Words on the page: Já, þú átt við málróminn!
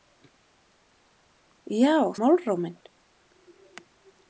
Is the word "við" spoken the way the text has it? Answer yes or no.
no